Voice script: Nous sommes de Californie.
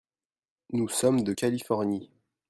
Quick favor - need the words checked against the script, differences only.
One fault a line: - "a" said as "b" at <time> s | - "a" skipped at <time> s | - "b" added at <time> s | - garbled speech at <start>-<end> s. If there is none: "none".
none